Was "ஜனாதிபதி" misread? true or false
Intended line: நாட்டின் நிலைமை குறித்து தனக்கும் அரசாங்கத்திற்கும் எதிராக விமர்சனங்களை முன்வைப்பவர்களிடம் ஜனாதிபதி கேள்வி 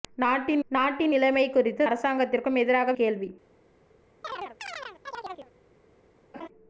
true